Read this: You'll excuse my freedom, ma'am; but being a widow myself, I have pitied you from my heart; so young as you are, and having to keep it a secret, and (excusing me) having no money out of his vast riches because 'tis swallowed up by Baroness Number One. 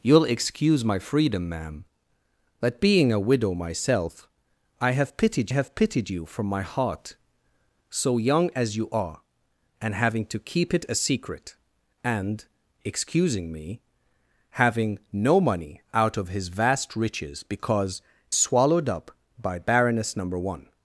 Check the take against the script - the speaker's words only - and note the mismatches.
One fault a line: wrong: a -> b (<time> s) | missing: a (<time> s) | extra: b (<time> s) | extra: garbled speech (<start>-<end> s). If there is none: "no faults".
extra: have pitied (5.5 s)
missing: tis (18.0 s)